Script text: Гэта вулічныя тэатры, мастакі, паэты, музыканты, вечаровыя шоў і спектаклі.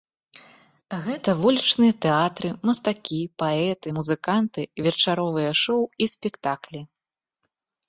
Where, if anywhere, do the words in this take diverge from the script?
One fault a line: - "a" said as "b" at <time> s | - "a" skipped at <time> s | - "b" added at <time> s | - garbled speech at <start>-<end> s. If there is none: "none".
none